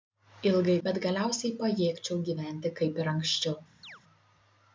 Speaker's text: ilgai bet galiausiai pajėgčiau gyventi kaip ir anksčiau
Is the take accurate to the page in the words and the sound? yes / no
no